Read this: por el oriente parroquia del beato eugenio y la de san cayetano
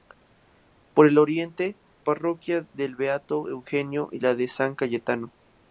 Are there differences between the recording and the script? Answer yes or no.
no